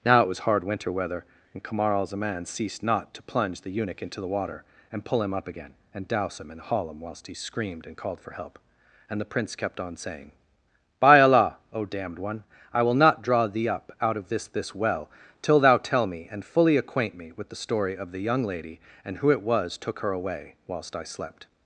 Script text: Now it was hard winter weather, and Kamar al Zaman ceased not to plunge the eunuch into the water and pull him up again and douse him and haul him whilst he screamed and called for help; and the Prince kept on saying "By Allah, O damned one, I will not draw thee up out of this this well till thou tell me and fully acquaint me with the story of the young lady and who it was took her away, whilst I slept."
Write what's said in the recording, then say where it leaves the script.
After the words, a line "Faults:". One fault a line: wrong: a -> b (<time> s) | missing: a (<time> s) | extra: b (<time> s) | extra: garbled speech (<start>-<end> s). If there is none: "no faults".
Now it was hard winter weather, and Kamar al Zaman ceased not to plunge the eunuch into the water and pull him up again and douse him and haul him whilst he screamed and called for help; and the Prince kept on saying "By Allah, O damned one, I will not draw thee up out of this this well till thou tell me and fully acquaint me with the story of the young lady and who it was took her away, whilst I slept."
Faults:
no faults